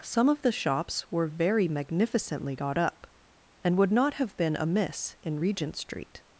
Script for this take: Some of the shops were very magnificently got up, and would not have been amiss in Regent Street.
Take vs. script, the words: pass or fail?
pass